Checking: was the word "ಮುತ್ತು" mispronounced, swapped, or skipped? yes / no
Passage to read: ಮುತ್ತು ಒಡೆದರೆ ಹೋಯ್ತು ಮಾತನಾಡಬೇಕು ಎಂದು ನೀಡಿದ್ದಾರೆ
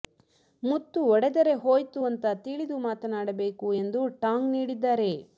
no